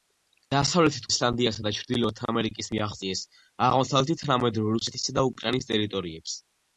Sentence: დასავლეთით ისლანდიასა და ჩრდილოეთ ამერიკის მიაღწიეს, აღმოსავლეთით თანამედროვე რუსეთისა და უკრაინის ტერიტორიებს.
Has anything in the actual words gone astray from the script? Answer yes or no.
no